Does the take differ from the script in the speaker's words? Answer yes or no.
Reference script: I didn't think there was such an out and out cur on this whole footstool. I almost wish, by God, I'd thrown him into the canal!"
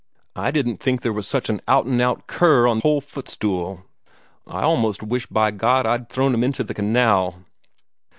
yes